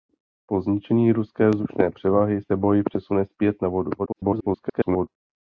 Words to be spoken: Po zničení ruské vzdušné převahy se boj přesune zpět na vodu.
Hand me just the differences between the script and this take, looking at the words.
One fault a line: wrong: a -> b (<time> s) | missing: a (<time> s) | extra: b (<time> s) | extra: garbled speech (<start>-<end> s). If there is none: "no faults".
extra: garbled speech (4.0-5.1 s)